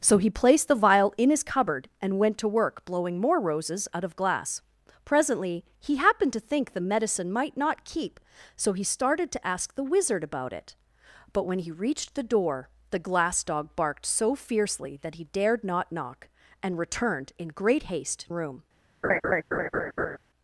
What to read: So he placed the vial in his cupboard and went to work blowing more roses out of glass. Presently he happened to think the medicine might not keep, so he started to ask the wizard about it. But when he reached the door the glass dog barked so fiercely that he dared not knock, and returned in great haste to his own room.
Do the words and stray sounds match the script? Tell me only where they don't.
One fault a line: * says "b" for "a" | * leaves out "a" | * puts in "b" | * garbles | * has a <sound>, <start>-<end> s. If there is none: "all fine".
* leaves out "to his own"
* has a laugh, 19.0-20.2 s